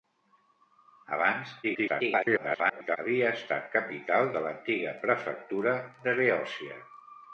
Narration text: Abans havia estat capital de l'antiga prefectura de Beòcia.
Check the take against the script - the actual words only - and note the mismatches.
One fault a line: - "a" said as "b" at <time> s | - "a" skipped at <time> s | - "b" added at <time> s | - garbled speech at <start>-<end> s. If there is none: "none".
- garbled speech at 1.6-3.0 s